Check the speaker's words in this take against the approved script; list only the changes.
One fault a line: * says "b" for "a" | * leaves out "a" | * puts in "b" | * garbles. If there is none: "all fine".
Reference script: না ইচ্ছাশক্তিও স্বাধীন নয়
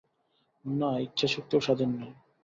all fine